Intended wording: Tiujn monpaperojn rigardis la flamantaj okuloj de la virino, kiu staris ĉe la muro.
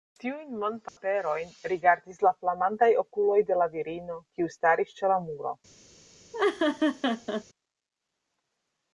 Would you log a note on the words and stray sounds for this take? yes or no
yes